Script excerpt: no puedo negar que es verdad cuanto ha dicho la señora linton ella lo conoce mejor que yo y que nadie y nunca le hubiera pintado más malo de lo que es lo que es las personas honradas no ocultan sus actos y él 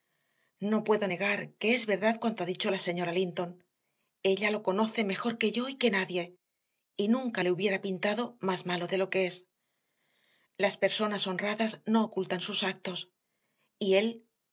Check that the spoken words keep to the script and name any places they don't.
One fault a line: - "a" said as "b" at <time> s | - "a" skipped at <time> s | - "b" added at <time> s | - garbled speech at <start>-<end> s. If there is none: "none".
- "lo que es" skipped at 9.5 s